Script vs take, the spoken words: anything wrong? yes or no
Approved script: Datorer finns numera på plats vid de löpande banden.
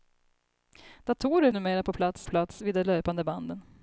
yes